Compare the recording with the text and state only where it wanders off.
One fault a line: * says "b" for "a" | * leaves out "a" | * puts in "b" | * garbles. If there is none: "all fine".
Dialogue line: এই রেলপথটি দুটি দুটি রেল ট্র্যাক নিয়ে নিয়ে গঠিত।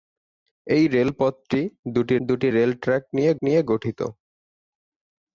all fine